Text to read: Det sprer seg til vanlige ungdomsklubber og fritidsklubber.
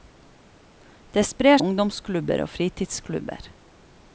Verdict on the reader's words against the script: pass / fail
fail